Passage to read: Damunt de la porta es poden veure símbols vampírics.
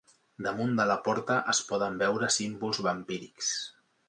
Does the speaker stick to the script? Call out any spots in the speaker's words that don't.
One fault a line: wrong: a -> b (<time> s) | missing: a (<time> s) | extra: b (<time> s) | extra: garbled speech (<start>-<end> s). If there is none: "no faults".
no faults